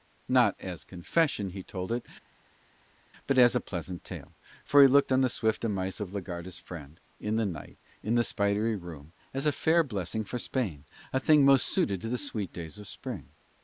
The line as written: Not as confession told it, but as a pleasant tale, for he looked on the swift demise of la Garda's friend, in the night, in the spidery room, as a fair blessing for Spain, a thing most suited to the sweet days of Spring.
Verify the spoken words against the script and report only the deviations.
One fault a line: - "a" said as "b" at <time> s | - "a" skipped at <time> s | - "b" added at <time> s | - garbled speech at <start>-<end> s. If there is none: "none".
- "he" added at 1.5 s